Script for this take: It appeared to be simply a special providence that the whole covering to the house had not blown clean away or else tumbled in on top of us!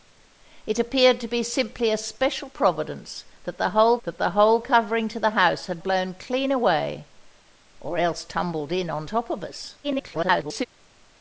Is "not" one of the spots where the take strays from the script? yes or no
yes